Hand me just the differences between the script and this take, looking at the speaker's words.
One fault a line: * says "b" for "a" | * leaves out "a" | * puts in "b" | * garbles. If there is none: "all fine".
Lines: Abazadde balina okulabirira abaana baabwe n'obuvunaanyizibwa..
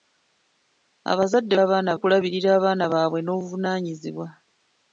* says "abaana" for "balina"